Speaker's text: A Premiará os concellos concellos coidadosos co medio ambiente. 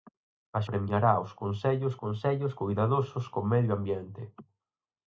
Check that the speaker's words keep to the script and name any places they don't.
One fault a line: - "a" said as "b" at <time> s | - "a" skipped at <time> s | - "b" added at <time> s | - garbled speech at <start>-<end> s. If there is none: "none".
none